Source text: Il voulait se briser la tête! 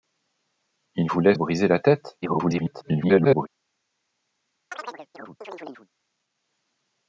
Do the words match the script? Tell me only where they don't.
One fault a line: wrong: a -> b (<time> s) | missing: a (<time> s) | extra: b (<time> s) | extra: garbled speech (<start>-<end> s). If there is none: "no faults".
missing: se (1.3 s)
extra: garbled speech (2.2-3.5 s)